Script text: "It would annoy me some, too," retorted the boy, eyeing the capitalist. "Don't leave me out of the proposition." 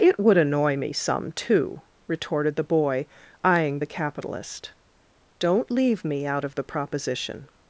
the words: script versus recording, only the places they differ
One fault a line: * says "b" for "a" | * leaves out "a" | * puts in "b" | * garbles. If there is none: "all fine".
all fine